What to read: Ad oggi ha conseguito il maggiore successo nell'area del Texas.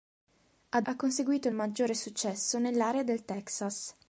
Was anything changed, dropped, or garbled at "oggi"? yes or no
yes